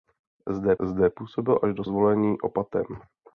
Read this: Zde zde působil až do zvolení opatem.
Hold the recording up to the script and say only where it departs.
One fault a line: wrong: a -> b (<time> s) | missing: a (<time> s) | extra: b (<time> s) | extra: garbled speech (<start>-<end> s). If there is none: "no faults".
no faults